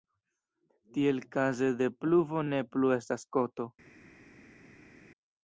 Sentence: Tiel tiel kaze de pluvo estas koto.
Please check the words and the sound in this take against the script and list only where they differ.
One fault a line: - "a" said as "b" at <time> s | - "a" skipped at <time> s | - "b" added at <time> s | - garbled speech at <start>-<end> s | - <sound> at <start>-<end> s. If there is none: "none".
- "tiel" skipped at 1.2 s
- "ne plu" added at 2.5 s